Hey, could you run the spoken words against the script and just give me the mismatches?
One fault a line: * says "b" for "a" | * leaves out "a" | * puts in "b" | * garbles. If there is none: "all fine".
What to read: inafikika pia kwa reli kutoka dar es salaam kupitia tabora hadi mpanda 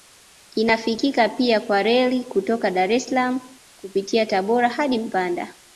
all fine